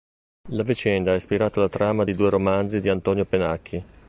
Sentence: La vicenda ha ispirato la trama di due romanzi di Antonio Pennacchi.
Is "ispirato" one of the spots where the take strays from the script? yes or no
no